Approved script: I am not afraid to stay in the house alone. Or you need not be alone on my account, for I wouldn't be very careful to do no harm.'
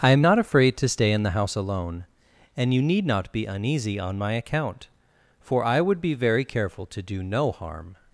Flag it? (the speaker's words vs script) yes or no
yes